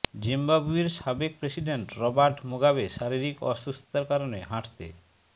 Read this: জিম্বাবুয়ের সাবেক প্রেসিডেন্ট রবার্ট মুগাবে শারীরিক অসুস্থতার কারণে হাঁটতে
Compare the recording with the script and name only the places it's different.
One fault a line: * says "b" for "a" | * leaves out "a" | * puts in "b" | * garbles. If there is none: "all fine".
all fine